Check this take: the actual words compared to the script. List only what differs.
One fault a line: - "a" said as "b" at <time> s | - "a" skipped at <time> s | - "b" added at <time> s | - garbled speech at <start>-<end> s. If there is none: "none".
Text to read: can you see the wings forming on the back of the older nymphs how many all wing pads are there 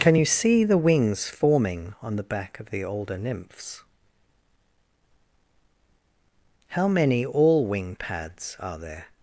none